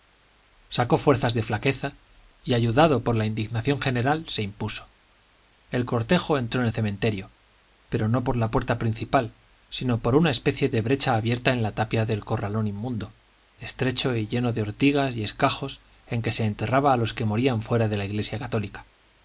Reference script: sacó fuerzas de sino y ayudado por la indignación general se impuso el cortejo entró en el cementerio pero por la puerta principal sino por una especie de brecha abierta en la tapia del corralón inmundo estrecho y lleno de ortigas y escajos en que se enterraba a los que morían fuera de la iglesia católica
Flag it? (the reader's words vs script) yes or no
yes